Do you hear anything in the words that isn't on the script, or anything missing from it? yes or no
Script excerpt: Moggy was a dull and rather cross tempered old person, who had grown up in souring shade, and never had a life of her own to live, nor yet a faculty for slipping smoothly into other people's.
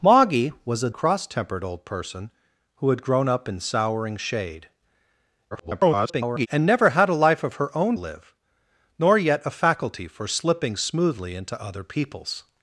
yes